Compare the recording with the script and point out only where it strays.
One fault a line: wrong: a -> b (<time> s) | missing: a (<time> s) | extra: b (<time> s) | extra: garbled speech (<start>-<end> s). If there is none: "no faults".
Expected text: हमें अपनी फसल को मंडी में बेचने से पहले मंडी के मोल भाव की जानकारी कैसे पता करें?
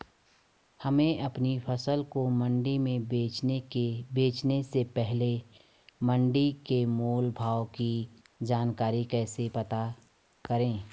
no faults